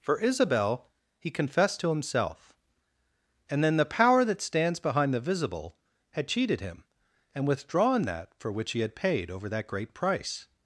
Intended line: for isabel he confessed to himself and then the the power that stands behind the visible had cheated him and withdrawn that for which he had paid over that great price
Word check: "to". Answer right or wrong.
right